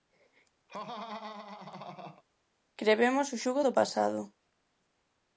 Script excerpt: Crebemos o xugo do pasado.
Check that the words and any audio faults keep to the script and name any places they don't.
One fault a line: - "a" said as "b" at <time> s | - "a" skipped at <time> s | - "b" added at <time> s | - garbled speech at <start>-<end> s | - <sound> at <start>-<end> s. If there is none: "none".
- laugh at 0.7-2.2 s